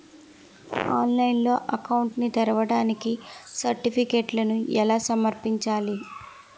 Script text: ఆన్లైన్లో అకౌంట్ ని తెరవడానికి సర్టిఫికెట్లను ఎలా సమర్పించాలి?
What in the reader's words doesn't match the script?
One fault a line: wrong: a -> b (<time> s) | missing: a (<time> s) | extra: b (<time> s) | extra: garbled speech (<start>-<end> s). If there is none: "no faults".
no faults